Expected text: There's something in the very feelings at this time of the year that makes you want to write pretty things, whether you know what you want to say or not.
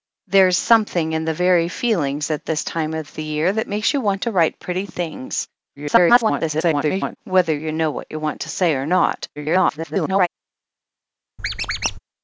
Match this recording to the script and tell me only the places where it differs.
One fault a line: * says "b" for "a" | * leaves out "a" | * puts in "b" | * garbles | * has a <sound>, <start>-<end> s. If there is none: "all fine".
* garbles
* garbles
* has a squeak, 11.4-12.0 s